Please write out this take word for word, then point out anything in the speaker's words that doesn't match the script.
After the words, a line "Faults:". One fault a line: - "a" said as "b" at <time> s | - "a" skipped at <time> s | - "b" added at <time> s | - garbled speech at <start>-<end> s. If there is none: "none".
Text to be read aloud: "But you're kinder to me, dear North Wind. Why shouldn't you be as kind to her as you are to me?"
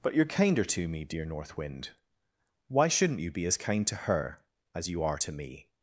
"But you're kinder to me, dear North Wind. Why shouldn't you be as kind to her as you are to me?"
Faults:
none